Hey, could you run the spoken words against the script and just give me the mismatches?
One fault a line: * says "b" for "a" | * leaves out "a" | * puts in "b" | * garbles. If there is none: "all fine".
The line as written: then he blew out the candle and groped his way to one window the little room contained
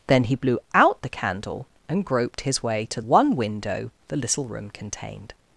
all fine